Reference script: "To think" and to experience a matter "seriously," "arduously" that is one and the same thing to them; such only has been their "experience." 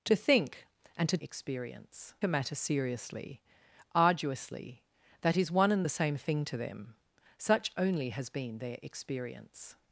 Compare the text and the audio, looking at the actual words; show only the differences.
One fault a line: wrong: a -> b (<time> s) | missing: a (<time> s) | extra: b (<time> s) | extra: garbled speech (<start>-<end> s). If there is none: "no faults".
no faults